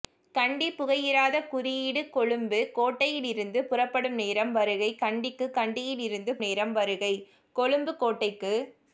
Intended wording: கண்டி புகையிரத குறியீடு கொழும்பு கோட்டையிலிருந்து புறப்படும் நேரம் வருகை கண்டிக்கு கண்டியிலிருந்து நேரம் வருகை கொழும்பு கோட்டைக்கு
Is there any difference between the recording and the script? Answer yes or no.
no